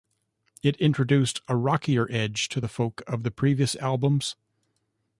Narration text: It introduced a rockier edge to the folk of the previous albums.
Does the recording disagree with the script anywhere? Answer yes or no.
no